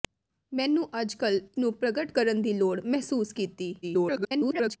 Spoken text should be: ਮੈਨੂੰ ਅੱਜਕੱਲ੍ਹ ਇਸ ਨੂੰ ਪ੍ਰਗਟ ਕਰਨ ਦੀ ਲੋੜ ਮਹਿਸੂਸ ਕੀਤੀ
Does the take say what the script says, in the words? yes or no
no